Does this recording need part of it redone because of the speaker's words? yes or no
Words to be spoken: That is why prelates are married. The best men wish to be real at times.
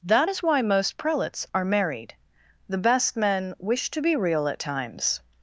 yes